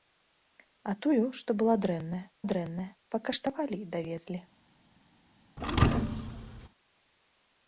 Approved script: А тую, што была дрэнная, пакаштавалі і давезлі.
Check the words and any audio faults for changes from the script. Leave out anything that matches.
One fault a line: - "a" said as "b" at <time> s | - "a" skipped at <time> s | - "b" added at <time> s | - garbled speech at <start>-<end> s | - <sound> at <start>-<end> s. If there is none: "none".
- "дрэнная" added at 2.5 s
- thud at 5.6-6.7 s